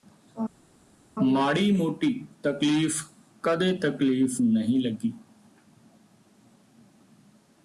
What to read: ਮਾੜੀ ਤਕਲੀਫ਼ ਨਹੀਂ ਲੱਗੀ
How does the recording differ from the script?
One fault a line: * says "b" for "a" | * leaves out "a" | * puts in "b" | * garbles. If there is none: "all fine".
* puts in "ਮੋਟੀ ਤਕਲੀਫ਼ ਕਦੇ"